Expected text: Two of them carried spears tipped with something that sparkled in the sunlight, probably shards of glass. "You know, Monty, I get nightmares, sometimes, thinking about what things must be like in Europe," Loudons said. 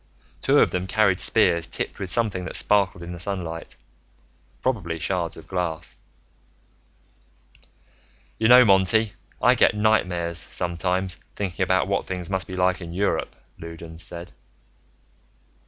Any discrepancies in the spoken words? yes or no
no